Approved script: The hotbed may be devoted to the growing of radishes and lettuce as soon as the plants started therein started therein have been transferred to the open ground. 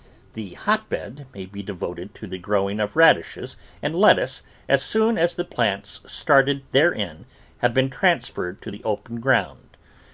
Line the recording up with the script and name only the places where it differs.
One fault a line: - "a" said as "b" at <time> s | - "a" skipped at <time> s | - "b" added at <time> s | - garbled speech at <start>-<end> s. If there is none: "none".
- "started therein" skipped at 7.2 s